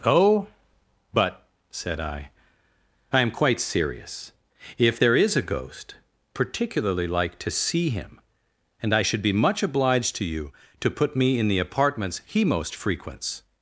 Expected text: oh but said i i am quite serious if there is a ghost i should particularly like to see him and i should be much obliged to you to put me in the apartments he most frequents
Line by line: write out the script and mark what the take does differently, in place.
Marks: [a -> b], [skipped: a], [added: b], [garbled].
oh but said i i am quite serious if there is a ghost [skipped: i should] particularly like to see him and i should be much obliged to you to put me in the apartments he most frequents